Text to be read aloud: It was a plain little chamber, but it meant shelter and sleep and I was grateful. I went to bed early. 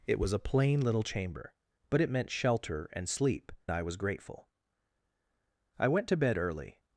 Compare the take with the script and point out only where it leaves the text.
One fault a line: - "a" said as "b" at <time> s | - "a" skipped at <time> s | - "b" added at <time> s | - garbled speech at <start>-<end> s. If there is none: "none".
- "and" skipped at 3.5 s